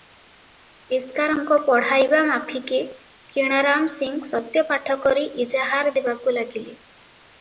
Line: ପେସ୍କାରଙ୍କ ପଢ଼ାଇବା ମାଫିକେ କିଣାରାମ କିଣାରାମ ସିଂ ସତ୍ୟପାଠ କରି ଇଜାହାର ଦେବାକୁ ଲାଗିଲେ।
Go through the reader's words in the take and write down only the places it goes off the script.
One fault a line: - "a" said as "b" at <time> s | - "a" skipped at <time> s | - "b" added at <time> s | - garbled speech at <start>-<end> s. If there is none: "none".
- "କିଣାରାମ" skipped at 3.9 s